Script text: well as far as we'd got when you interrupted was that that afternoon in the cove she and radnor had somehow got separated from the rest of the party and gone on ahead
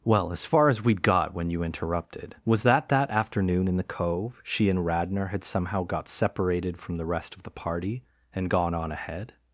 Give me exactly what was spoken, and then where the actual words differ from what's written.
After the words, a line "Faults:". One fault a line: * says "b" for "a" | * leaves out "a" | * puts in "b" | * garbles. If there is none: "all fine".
well as far as we'd got when you interrupted was that that afternoon in the cove she and radnor had somehow got separated from the rest of the party and gone on ahead
Faults:
all fine